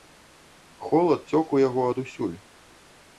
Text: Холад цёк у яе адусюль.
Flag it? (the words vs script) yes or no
yes